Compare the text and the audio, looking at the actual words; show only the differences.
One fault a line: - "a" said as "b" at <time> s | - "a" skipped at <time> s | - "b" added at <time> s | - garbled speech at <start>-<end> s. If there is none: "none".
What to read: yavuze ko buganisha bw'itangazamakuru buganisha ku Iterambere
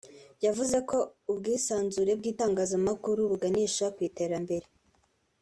- "buganisha" said as "ubwisanzure" at 1.3 s